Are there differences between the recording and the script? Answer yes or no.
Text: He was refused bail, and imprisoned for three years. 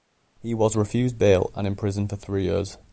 no